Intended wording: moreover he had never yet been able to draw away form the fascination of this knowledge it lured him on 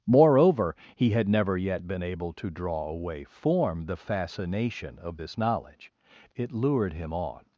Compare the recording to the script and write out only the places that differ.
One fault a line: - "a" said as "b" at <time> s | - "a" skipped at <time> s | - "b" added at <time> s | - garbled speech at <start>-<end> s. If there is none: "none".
none